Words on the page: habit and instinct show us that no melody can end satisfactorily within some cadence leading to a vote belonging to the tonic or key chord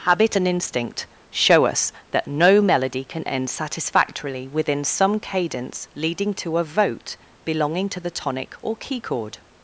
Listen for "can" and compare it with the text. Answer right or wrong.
right